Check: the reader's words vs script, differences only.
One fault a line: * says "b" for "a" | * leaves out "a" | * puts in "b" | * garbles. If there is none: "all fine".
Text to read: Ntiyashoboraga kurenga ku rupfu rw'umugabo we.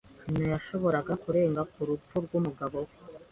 all fine